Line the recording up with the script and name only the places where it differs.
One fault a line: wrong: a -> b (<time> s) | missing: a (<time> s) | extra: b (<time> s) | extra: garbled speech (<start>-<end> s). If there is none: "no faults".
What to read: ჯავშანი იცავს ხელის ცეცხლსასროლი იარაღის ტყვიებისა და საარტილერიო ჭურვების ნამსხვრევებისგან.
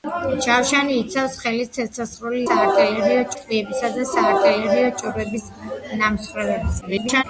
wrong: იარაღის -> საარტილერიო (2.5 s)
extra: garbled speech (6.8-7.2 s)